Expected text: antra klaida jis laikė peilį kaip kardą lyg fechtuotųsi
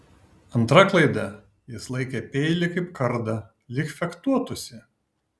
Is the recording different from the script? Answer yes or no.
no